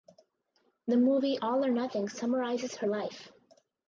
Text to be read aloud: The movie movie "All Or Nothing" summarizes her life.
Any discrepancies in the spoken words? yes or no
yes